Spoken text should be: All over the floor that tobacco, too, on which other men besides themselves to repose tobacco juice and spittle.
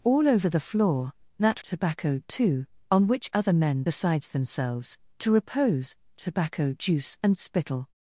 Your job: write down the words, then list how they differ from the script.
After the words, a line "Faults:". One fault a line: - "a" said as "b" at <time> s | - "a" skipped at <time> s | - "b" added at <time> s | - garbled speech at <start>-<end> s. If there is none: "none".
All over the floor that tobacco, too, on which other men besides themselves to repose tobacco juice and spittle.
Faults:
none